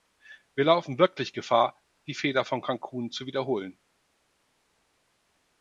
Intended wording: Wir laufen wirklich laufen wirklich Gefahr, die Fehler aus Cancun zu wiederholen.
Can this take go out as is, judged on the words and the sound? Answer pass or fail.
fail